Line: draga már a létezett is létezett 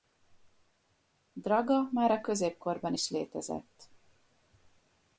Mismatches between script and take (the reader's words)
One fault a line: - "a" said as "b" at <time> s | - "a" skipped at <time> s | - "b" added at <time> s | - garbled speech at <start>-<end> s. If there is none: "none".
- "létezett" said as "középkorban" at 2.2 s